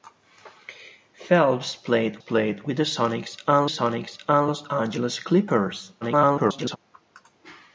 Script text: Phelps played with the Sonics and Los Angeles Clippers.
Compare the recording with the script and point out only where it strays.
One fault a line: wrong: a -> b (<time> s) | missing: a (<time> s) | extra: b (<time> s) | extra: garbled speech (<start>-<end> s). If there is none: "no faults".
extra: played (2.2 s)
extra: Sonics and (3.6 s)
extra: garbled speech (6.0-6.8 s)